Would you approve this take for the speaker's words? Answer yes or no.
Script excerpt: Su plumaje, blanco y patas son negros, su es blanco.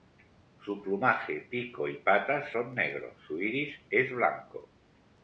no